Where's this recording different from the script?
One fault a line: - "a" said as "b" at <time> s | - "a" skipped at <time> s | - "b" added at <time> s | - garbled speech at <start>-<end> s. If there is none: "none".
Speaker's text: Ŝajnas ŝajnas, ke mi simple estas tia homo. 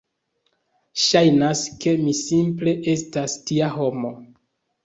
- "ŝajnas" skipped at 1.6 s